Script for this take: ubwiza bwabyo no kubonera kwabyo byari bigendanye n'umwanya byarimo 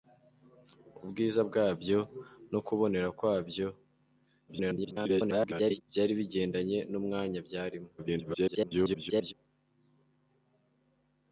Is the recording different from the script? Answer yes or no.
yes